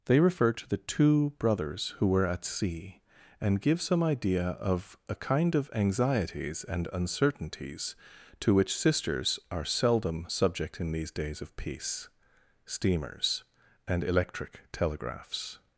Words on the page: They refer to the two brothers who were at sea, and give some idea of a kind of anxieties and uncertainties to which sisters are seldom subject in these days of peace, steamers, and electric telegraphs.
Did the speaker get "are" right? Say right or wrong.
right